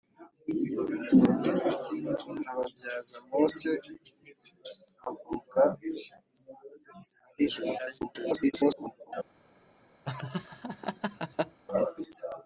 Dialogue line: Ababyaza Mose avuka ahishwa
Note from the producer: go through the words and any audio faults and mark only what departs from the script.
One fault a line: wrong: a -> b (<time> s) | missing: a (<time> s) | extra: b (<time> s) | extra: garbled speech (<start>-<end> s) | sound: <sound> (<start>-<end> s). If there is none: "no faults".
extra: garbled speech (7.8-9.1 s)
sound: laugh (10.0-11.6 s)